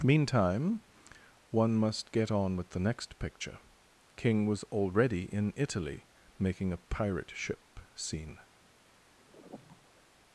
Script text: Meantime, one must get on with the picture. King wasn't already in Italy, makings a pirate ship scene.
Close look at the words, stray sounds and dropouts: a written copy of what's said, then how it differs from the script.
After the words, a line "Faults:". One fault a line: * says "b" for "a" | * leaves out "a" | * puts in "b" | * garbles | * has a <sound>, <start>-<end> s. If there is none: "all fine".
Meantime, one must get on with the next picture. King was already in Italy, making a pirate ship scene.
Faults:
* puts in "next"
* says "was" for "wasn't"
* says "making" for "makings"
* has a sigh, 9.2-10.0 s